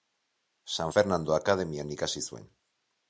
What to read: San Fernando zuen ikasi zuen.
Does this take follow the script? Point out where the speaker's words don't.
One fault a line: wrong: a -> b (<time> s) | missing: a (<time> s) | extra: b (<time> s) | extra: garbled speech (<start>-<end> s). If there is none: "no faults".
wrong: zuen -> akademian (1.4 s)